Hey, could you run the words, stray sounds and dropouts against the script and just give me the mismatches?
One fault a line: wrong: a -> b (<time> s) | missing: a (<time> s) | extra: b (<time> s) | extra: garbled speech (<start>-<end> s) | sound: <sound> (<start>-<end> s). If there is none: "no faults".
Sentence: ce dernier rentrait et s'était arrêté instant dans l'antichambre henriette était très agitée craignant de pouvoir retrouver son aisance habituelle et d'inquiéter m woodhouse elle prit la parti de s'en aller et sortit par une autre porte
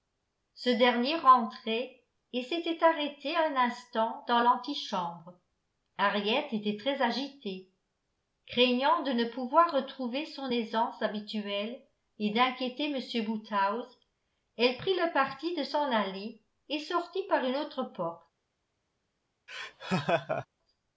extra: un (3.4 s)
extra: ne (9.1 s)
wrong: la -> le (14.9 s)
sound: laugh (19.5-20.5 s)